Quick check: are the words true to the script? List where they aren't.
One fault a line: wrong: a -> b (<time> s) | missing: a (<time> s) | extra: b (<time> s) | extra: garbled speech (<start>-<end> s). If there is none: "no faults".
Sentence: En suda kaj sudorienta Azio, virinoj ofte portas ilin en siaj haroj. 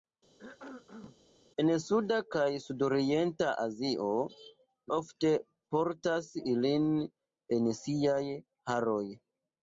missing: virinoj (4.1 s)